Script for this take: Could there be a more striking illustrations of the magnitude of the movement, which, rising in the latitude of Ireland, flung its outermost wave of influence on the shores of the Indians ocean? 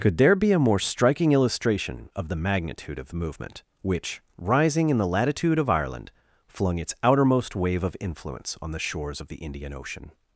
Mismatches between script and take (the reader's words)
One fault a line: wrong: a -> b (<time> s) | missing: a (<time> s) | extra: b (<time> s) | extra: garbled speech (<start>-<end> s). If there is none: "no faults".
wrong: illustrations -> illustration (1.3 s)
wrong: Indians -> Indian (9.4 s)